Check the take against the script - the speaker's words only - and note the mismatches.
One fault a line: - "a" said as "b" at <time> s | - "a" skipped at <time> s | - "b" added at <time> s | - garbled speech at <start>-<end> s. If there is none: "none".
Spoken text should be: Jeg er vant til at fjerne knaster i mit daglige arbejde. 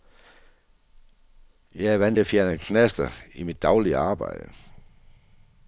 - "til" skipped at 2.2 s